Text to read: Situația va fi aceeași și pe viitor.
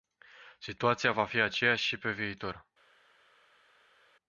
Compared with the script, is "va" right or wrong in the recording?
right